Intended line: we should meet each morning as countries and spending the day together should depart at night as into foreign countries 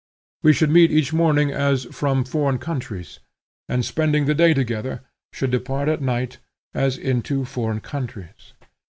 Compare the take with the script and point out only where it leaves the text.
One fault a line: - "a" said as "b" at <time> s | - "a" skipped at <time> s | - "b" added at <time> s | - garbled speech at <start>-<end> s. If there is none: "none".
- "from foreign" added at 1.9 s